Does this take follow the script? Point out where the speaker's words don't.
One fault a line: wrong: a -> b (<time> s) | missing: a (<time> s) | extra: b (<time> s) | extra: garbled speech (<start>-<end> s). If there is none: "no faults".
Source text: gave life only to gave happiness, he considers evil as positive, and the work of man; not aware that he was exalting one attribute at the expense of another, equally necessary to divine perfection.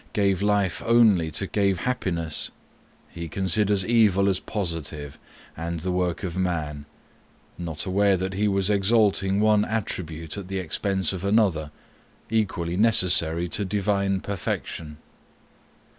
no faults